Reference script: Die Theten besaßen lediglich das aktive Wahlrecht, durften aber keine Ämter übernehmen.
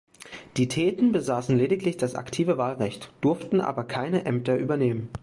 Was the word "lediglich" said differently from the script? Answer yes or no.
no